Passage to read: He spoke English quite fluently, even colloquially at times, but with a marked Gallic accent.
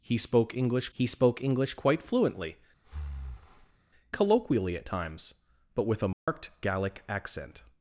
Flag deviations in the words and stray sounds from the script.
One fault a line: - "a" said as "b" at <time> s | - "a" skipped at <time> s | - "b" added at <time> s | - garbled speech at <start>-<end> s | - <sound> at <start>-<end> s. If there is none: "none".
- "he spoke English" added at 0.9 s
- "even" skipped at 2.6 s
- breath at 2.8-3.8 s
- dropout at 6.1-6.3 s